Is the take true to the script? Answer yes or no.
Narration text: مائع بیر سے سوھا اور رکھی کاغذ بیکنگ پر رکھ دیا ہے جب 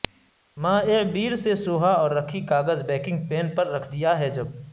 no